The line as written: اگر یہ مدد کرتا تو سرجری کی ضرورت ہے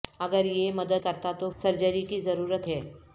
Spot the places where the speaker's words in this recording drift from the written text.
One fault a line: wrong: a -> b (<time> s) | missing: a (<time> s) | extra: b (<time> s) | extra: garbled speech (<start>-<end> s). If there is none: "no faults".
no faults